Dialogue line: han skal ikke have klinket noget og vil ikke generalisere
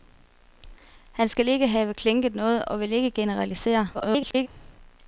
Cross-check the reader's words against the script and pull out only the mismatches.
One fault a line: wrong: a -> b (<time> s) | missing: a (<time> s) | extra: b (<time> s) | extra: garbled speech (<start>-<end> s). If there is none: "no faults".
extra: garbled speech (3.9-4.5 s)